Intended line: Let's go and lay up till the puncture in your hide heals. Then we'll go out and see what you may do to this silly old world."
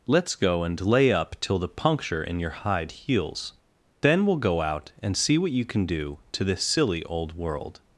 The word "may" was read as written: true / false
false